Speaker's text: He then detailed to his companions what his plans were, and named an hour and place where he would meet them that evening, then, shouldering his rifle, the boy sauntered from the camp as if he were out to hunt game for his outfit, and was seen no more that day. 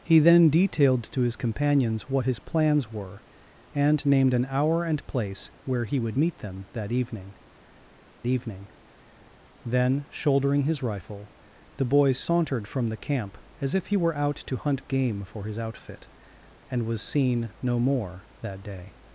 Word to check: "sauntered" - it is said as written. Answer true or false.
true